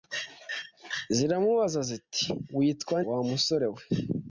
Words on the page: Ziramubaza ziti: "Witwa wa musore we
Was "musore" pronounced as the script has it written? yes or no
yes